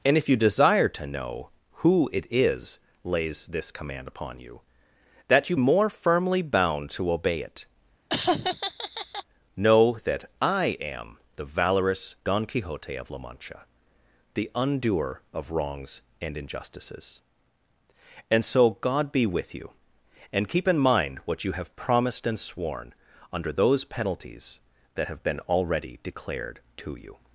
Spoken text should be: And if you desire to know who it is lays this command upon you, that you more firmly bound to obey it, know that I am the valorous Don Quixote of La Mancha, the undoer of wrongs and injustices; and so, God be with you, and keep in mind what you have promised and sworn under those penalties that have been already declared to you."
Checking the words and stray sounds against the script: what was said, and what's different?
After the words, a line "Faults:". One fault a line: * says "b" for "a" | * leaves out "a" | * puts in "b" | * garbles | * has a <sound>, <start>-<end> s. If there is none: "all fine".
And if you desire to know who it is lays this command upon you, that you more firmly bound to obey it, know that I am the valorous Don Quixote of La Mancha, the undoer of wrongs and injustices; and so, God be with you, and keep in mind what you have promised and sworn under those penalties that have been already declared to you."
Faults:
* has a laugh, 8.1-9.2 s